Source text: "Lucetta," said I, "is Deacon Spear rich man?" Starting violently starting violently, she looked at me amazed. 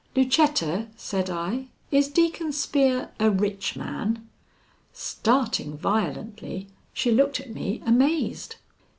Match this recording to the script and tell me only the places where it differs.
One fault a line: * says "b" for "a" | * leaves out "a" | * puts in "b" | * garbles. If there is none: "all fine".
* puts in "a"
* leaves out "starting violently"